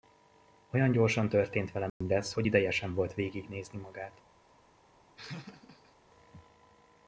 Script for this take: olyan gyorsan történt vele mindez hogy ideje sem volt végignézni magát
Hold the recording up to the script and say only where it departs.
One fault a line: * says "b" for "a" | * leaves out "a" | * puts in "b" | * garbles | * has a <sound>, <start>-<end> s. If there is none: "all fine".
* has a dropout, 1.9-2.0 s
* has a laugh, 5.2-6.0 s